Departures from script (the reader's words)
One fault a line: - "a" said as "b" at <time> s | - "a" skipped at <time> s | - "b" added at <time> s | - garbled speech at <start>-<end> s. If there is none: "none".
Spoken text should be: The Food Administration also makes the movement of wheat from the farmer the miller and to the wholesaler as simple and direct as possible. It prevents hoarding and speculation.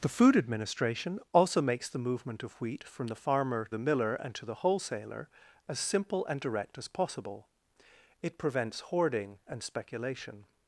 none